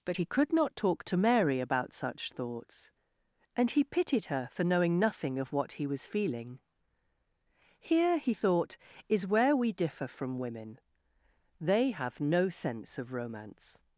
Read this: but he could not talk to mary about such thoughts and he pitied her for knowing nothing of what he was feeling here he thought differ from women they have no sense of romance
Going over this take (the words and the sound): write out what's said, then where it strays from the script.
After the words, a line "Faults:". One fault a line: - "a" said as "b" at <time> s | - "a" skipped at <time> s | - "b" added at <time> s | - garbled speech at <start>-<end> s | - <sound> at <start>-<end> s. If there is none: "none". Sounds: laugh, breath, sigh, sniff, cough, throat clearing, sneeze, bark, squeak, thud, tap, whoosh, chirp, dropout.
but he could not talk to mary about such thoughts and he pitied her for knowing nothing of what he was feeling here he thought is where we differ from women they have no sense of romance
Faults:
- "is where we" added at 9.1 s